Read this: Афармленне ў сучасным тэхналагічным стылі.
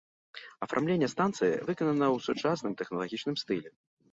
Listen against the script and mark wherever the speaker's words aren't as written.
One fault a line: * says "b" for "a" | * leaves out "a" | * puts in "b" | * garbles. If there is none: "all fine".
* puts in "станцыі выканана"